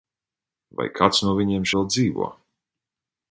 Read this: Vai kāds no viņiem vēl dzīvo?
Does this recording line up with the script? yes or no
yes